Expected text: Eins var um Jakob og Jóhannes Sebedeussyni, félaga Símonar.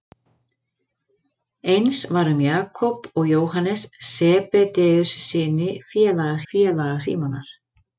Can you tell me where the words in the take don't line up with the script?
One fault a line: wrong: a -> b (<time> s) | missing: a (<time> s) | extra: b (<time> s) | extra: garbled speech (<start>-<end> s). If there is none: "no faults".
extra: félaga (6.5 s)